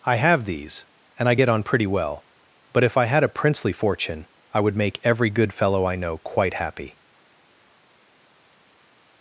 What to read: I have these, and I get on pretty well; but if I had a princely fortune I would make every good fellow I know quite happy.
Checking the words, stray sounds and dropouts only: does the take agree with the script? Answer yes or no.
yes